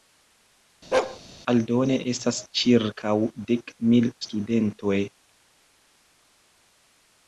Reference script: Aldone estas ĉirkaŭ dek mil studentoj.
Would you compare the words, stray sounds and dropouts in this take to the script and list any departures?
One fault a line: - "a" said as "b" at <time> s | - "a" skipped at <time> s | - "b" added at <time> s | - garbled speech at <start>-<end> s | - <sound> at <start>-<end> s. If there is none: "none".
- bark at 0.9-1.2 s